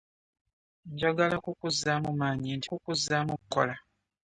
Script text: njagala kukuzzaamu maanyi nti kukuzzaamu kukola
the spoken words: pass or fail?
pass